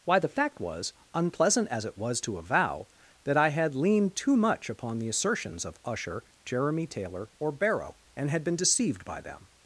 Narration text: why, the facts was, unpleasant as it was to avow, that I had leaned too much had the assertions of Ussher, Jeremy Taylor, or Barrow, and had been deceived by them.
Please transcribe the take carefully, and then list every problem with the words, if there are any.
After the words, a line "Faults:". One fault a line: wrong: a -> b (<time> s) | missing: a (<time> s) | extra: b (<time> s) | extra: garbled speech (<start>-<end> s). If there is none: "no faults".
why, the fact was, unpleasant as it was to avow, that I had leaned too much upon the assertions of Ussher, Jeremy Taylor, or Barrow, and had been deceived by them.
Faults:
wrong: facts -> fact (0.3 s)
wrong: had -> upon (4.7 s)